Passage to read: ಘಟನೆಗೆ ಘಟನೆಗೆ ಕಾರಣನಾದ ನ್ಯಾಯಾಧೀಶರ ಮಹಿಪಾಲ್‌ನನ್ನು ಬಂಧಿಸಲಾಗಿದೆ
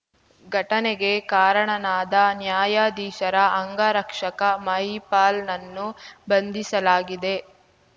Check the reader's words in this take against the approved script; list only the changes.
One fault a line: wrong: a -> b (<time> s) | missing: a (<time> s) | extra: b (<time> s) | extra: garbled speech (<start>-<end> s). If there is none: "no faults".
missing: ಘಟನೆಗೆ (1.1 s)
extra: ಅಂಗರಕ್ಷಕ (3.6 s)